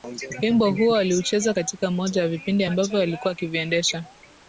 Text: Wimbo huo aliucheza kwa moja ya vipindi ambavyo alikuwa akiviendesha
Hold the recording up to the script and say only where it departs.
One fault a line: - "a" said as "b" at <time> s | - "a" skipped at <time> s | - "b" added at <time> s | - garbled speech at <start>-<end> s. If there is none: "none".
- "kwa" said as "katika" at 1.5 s